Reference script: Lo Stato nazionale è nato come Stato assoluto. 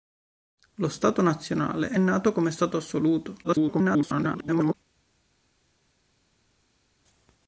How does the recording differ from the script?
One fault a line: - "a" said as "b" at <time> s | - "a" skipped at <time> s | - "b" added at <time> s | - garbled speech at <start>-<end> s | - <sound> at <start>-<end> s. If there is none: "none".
- garbled speech at 3.4-4.7 s